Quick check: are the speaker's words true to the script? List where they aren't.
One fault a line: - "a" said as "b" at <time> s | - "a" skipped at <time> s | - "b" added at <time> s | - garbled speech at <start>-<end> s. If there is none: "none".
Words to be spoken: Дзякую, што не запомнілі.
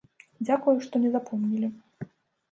none